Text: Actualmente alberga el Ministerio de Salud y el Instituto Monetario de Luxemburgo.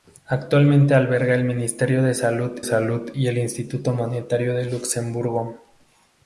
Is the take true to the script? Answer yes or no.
no